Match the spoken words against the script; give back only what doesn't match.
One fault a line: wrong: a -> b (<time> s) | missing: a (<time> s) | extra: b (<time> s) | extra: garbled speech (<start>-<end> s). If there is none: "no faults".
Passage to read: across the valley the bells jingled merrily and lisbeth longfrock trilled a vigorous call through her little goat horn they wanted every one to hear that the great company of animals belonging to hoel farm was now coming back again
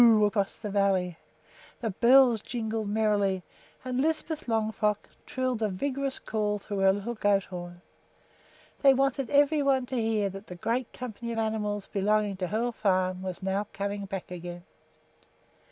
no faults